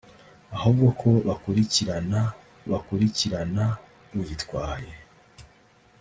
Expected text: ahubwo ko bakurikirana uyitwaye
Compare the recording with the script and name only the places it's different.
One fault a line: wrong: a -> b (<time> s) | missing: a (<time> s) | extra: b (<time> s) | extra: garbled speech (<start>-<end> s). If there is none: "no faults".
extra: bakurikirana (2.7 s)